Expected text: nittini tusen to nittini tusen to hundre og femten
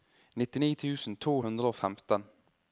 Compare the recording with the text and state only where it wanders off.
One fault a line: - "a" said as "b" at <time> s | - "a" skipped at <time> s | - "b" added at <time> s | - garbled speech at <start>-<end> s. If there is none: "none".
- "nittini tusen to" skipped at 1.4 s